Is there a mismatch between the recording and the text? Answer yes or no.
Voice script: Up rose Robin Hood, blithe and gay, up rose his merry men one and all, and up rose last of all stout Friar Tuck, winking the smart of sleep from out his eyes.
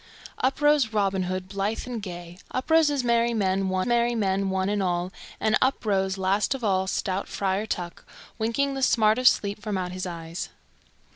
yes